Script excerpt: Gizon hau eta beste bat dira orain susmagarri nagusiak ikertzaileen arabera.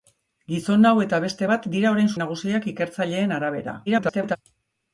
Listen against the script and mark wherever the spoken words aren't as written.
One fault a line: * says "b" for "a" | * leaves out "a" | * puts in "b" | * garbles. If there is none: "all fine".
* leaves out "susmagarri"
* garbles